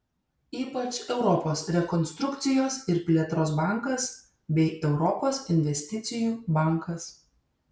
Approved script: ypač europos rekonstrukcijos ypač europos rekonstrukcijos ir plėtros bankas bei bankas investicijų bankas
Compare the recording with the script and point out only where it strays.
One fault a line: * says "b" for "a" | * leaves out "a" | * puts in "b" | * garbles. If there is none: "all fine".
* leaves out "ypač europos rekonstrukcijos"
* says "europos" for "bankas"